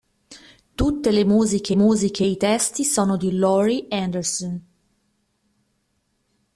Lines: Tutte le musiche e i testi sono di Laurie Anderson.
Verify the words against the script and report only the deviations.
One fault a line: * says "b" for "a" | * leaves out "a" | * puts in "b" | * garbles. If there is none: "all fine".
* puts in "musiche"